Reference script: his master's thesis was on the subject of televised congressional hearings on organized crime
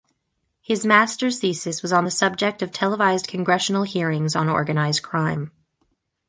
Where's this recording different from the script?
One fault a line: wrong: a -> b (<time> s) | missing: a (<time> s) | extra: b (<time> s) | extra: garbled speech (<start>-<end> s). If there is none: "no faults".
no faults